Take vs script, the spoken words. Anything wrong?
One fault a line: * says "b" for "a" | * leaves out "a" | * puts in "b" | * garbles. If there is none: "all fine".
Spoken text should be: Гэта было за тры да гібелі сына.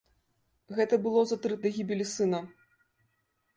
all fine